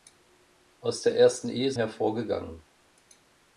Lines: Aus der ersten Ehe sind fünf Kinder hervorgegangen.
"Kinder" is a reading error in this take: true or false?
true